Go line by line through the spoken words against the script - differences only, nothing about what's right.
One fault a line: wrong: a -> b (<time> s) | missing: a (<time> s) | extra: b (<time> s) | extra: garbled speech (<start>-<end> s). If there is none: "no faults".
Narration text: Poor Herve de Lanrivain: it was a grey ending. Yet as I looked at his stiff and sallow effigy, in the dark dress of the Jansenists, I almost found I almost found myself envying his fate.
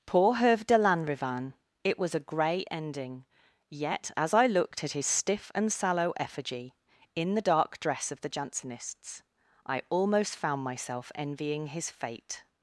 missing: I almost found (10.6 s)